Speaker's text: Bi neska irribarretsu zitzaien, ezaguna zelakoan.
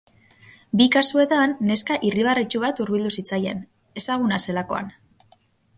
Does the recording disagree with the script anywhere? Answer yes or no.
yes